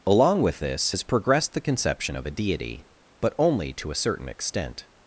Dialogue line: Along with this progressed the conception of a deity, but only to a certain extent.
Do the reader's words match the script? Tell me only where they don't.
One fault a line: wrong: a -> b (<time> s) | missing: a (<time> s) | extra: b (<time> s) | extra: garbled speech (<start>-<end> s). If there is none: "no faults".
extra: has (0.9 s)